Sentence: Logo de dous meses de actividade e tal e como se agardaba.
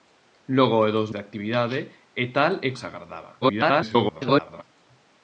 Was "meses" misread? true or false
true